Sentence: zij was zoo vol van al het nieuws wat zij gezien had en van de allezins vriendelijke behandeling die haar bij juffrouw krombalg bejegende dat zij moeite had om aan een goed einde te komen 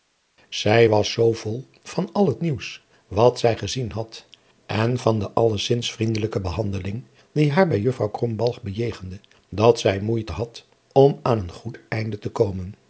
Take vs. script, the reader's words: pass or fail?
pass